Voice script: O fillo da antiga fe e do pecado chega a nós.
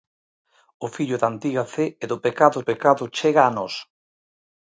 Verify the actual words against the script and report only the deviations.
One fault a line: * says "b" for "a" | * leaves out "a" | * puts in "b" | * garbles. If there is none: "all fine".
* puts in "pecado"